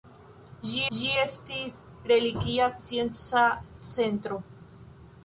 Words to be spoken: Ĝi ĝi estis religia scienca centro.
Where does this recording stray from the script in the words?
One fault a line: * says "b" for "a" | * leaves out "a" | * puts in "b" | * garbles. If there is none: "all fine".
all fine